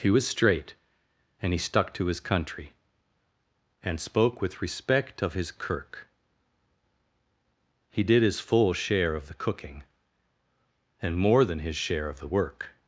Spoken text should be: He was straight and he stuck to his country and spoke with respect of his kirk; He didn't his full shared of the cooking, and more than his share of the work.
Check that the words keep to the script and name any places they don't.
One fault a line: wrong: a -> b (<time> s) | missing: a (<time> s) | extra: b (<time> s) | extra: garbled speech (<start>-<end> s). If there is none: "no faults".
wrong: didn't -> did (8.0 s)
wrong: shared -> share (8.7 s)